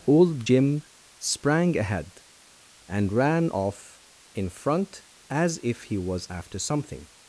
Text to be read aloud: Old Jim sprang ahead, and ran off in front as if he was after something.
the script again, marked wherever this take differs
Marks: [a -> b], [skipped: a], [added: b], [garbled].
Old Jim sprang ahead, and ran off in front as if he was after something.